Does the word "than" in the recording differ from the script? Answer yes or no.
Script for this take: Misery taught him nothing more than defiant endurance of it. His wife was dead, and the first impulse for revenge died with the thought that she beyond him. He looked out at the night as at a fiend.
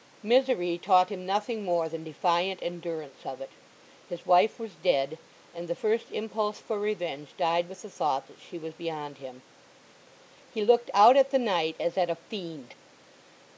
no